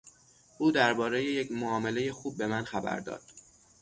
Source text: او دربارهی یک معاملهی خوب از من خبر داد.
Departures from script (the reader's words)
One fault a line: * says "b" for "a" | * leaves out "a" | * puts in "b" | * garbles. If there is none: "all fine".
* says "به" for "از"